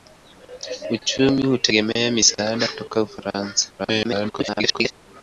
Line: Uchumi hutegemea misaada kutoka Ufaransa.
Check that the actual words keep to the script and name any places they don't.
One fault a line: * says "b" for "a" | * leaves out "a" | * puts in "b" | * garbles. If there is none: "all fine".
* garbles